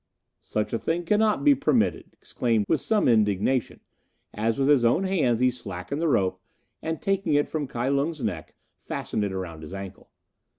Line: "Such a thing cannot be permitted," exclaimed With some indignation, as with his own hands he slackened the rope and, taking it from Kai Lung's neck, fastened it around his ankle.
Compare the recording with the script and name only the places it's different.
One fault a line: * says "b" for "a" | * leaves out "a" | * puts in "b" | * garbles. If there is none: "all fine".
all fine